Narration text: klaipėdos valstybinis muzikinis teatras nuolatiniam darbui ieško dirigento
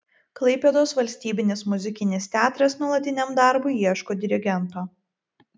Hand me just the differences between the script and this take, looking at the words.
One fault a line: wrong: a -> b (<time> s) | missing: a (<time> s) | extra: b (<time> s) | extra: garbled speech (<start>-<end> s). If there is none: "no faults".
no faults